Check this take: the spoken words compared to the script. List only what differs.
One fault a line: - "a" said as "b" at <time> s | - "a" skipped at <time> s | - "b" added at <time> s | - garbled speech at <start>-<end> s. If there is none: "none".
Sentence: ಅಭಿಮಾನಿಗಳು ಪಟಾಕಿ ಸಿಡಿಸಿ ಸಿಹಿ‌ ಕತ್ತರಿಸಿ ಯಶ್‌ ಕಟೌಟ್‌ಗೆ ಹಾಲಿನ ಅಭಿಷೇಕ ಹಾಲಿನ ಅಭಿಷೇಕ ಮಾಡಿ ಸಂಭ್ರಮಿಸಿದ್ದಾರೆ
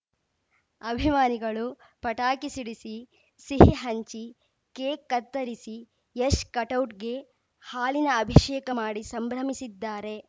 - "ಹಂಚಿ ಕೇಕ್" added at 3.8 s
- "ಹಾಲಿನ ಅಭಿಷೇಕ" skipped at 8.7 s